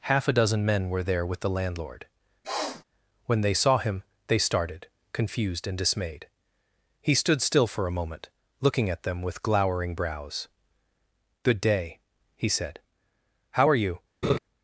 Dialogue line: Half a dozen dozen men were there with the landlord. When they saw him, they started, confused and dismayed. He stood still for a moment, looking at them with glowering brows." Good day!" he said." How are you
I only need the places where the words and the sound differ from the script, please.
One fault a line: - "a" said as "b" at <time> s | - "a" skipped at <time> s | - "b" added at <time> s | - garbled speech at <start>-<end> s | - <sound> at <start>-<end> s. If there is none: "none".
- "dozen" skipped at 0.7 s
- sniff at 2.4-2.8 s
- laugh at 14.2-14.4 s